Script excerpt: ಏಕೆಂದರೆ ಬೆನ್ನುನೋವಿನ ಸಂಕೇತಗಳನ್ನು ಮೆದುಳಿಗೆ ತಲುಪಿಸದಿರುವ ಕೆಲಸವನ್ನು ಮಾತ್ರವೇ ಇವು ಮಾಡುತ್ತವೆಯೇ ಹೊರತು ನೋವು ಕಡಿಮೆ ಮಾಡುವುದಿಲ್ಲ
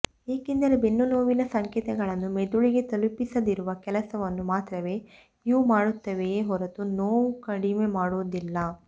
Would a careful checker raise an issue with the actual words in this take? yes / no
no